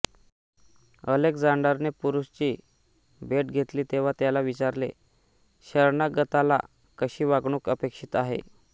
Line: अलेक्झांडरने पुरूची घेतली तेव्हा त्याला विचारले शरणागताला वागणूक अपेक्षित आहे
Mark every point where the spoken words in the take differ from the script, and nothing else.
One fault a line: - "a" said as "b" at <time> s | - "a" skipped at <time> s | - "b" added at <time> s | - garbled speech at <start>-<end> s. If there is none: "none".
- "भेट" added at 3.2 s
- "कशी" added at 7.0 s